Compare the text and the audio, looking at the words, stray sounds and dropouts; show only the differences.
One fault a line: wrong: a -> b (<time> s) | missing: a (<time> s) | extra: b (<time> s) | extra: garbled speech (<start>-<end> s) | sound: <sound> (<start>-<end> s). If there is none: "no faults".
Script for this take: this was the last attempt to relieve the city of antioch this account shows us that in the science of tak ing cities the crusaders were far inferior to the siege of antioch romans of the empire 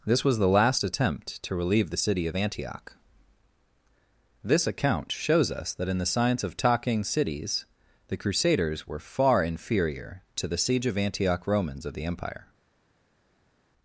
wrong: tak ing -> talking (6.6 s)